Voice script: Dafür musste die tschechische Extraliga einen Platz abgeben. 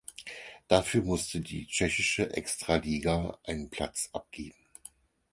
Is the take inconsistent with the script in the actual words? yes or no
no